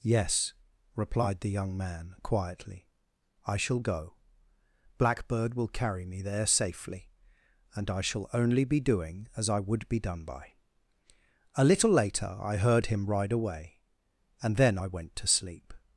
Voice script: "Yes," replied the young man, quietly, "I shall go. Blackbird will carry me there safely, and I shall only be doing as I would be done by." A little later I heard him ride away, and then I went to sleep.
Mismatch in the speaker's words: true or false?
false